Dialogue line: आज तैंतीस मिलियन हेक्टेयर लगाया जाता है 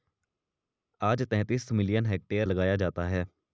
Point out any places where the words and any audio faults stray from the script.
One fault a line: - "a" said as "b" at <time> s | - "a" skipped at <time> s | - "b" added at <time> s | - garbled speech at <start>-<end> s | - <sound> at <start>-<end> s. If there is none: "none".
none